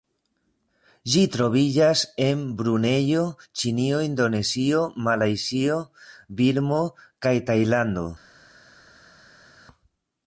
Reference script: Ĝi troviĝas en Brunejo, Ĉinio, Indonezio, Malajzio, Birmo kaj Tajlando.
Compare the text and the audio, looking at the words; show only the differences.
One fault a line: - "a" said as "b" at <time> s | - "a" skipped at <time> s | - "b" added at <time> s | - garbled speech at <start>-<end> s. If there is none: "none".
none